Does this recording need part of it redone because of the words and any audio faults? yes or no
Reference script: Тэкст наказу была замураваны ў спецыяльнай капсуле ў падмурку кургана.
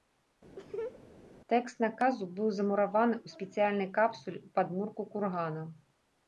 yes